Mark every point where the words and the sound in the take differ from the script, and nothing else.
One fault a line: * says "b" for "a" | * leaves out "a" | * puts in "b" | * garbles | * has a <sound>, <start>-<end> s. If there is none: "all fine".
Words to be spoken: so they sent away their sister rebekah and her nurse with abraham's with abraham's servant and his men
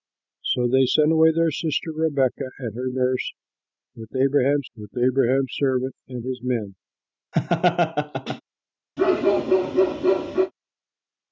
* has a laugh, 7.3-8.4 s
* has a bark, 9.0-10.5 s